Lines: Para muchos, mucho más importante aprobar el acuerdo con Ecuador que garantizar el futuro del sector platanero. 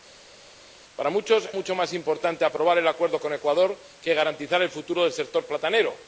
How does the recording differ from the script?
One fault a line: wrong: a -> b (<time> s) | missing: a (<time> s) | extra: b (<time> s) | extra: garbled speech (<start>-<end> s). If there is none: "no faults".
no faults